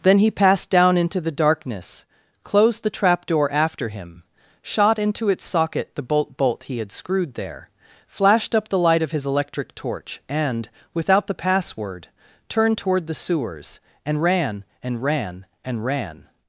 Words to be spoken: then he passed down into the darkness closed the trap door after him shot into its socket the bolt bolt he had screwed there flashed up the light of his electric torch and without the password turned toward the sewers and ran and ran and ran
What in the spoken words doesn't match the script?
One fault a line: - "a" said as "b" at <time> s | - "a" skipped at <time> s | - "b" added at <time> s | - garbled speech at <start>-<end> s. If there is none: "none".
none